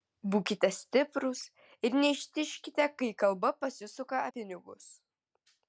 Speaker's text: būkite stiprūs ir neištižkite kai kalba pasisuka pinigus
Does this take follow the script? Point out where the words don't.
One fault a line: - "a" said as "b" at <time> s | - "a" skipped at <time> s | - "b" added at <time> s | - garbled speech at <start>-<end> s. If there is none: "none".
none